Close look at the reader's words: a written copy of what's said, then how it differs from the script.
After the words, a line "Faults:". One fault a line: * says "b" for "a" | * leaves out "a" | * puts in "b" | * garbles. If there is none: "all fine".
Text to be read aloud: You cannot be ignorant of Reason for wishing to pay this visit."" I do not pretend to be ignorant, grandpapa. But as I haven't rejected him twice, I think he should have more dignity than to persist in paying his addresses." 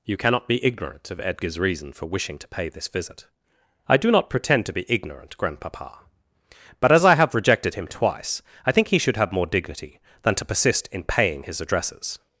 You cannot be ignorant of Edgar's reason for wishing to pay this visit."" I do not pretend to be ignorant, grandpapa. But as I have rejected him twice, I think he should have more dignity than to persist in paying his addresses."
Faults:
* puts in "Edgar's"
* says "have" for "haven't"